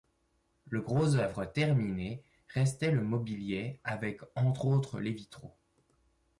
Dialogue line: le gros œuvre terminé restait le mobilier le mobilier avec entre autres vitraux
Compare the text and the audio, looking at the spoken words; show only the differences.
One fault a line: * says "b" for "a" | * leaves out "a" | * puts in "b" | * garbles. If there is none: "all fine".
* leaves out "le mobilier"
* puts in "les"